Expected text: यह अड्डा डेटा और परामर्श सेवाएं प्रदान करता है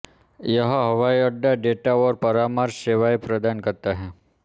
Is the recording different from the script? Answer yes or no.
yes